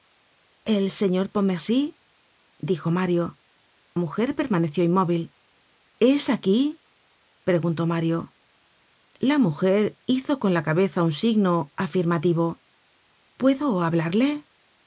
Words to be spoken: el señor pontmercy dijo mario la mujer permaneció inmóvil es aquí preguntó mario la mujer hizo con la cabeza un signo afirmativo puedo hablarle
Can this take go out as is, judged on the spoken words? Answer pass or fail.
fail